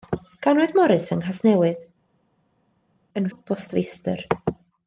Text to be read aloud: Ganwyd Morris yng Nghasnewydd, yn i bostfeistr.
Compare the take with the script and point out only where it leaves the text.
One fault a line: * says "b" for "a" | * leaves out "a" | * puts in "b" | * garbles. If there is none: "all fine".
all fine